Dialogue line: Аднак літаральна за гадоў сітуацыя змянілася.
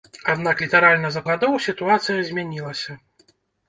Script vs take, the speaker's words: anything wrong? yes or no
no